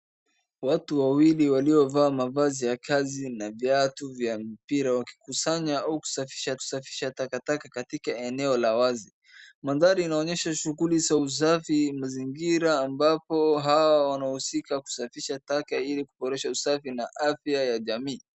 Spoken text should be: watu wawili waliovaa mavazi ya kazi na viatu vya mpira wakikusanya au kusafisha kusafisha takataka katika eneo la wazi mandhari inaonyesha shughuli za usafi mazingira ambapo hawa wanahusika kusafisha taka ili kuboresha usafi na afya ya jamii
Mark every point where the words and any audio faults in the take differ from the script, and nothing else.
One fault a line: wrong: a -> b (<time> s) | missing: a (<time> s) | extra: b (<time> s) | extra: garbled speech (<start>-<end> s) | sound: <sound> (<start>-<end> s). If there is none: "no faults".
no faults